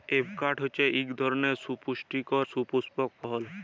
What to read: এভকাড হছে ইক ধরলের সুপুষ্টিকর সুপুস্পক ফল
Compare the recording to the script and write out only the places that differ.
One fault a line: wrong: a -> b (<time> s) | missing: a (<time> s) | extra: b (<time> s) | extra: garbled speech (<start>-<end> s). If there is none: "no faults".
no faults